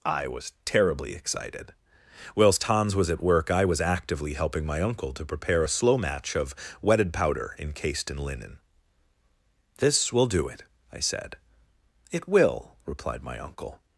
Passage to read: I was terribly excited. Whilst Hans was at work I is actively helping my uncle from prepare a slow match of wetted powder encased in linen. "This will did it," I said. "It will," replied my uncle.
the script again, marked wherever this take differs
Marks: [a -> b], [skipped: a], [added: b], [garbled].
I was terribly excited. Whilst Hans was at work I [is -> was] actively helping my uncle [from -> to] prepare a slow match of wetted powder encased in linen. "This will [did -> do] it," I said. "It will," replied my uncle.